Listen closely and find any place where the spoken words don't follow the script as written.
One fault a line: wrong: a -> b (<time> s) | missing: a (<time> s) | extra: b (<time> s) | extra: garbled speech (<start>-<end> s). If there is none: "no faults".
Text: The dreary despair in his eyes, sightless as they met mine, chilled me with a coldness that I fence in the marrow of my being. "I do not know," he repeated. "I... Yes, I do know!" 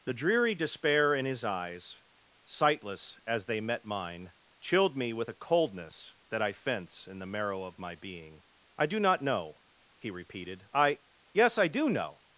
no faults